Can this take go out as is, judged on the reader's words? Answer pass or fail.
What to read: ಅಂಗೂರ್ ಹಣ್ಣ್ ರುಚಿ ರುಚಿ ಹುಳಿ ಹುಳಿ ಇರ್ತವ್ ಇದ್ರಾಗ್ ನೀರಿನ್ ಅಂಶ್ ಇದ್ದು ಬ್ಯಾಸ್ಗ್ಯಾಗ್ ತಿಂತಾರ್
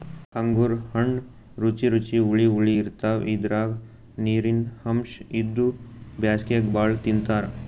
fail